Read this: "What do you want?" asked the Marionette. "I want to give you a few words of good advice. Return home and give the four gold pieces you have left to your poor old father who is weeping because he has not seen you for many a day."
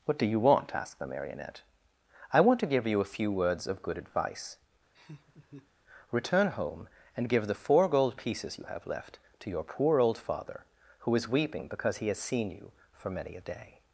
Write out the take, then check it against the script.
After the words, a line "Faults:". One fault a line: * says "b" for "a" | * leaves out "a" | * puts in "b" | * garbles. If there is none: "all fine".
"What do you want?" asked the Marionette. "I want to give you a few words of good advice. Return home and give the four gold pieces you have left to your poor old father who is weeping because he has seen you for many a day."
Faults:
* leaves out "not"